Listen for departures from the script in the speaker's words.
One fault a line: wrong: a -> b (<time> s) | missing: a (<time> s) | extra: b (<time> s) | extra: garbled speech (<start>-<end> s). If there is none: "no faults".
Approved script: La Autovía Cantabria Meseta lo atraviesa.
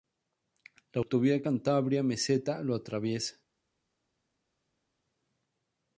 no faults